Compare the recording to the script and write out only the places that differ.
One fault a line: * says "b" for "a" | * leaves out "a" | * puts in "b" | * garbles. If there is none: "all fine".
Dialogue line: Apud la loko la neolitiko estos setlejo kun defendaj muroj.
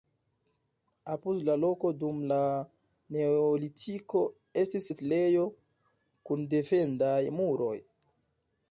* puts in "dum"
* says "estis" for "estos"